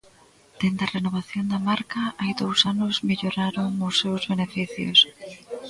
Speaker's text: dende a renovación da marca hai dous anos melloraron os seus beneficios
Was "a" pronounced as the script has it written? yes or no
yes